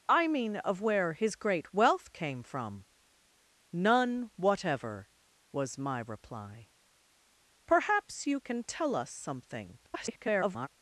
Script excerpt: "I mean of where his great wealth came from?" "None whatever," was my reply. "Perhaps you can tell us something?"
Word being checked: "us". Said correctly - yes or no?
yes